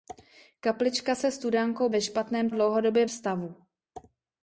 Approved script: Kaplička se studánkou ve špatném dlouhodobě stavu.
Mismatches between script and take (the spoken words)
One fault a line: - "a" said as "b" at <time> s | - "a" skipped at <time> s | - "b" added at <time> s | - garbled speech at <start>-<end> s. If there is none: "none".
none